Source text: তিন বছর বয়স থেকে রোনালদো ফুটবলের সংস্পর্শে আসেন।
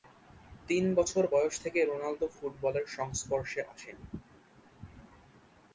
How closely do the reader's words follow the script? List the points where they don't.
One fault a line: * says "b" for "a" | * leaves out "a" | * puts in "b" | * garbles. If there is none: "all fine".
all fine